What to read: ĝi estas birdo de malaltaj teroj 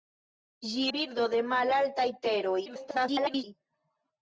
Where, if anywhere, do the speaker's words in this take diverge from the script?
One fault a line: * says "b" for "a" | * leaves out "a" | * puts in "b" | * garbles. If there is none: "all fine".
* leaves out "estas"
* garbles